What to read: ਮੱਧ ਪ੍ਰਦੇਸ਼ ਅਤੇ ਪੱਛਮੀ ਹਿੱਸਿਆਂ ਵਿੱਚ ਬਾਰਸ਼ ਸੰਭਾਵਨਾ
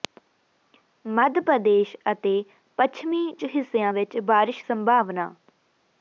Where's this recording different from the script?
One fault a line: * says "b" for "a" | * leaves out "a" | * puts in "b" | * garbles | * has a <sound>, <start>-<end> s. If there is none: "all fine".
all fine